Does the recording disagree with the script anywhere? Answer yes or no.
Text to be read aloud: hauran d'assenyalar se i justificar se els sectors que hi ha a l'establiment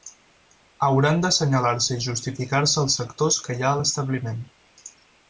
no